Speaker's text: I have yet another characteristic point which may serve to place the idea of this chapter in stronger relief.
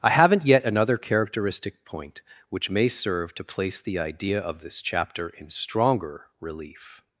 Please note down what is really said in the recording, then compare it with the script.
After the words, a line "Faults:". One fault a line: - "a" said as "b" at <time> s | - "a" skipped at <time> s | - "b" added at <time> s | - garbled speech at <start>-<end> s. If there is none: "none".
I haven't yet another characteristic point which may serve to place the idea of this chapter in stronger relief.
Faults:
- "have" said as "haven't" at 0.1 s